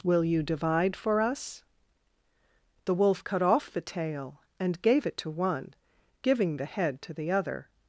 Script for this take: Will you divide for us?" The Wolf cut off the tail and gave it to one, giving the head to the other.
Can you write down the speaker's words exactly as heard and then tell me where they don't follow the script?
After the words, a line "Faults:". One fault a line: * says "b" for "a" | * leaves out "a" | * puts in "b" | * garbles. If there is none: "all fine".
Will you divide for us?" The Wolf cut off the tail and gave it to one, giving the head to the other.
Faults:
all fine